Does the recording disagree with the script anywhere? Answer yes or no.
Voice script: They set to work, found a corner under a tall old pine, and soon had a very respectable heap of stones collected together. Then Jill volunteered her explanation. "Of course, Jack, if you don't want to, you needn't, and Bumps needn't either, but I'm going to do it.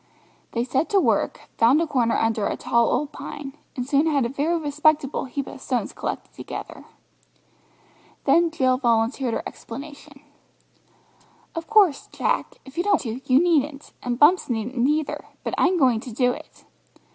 yes